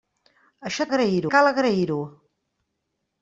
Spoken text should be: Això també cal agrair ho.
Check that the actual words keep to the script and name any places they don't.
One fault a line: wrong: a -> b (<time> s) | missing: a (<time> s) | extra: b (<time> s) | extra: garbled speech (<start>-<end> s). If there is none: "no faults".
wrong: també -> agrair (0.9 s)